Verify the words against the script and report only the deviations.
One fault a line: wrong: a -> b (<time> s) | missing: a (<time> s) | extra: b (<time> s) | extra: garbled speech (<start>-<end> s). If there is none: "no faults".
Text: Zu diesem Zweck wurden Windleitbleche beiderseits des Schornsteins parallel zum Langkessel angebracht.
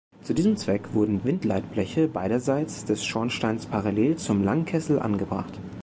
no faults